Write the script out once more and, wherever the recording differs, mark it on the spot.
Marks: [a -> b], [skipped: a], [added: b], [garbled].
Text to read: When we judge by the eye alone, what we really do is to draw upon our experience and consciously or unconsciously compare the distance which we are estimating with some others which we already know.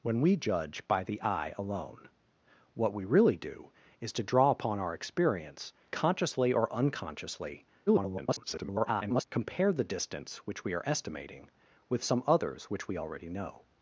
When we judge by the eye alone, what we really do is to draw upon our experience [skipped: and] consciously or unconsciously [garbled] compare the distance which we are estimating with some others which we already know.